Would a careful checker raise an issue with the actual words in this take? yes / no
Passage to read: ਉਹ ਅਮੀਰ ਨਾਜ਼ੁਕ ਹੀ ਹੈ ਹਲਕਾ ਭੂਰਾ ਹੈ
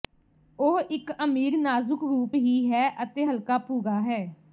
yes